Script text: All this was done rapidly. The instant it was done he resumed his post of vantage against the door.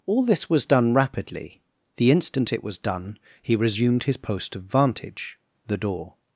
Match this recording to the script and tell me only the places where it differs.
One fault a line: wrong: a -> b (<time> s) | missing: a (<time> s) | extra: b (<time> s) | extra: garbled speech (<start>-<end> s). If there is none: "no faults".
missing: against (5.4 s)